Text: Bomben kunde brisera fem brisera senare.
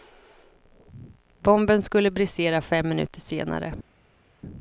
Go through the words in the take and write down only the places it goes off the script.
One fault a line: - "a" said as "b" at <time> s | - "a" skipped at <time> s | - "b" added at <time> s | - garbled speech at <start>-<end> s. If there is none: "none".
- "kunde" said as "skulle" at 1.8 s
- "brisera" said as "minuter" at 2.9 s